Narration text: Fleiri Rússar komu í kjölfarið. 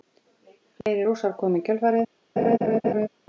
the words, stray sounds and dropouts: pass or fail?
fail